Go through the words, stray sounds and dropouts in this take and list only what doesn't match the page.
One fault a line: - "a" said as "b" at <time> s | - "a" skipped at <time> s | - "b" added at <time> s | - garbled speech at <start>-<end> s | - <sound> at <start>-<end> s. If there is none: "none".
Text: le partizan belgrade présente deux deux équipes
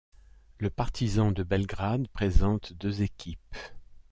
- "de" added at 1.3 s
- "deux" skipped at 3.0 s